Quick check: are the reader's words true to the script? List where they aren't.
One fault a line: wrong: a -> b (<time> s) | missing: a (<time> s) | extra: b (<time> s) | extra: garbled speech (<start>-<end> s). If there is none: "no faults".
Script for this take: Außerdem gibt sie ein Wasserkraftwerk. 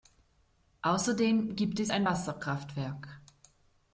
wrong: sie -> es (1.8 s)